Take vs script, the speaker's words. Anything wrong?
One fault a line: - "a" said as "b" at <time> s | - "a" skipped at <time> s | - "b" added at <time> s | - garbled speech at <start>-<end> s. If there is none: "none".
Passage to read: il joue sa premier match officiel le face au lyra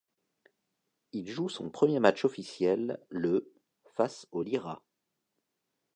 - "sa" said as "son" at 1.5 s